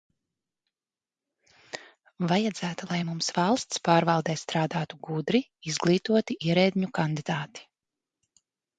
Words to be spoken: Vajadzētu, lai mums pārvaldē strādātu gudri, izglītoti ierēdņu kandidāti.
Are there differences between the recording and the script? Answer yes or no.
yes